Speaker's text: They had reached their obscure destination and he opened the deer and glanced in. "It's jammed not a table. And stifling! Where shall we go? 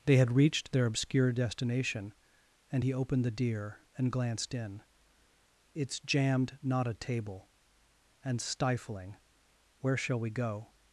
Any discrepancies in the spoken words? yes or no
no